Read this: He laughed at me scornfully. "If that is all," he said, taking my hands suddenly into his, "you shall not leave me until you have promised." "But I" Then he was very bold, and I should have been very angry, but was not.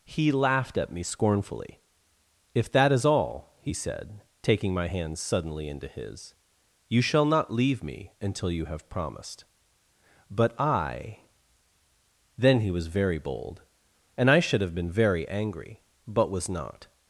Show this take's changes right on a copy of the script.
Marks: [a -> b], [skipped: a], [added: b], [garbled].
He laughed at me scornfully. "If that is all," he said, taking my hands suddenly into his, "you shall not leave me until you have promised." "But I" Then he was very bold, and I should have been very angry, but was not.